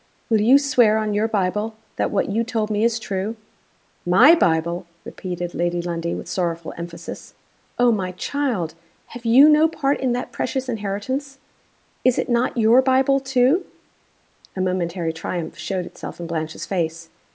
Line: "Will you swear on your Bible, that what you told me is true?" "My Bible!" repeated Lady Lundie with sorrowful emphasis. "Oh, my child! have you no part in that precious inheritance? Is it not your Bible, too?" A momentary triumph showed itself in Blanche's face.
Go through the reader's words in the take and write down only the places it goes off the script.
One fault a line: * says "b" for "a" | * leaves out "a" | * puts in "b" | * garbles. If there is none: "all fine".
all fine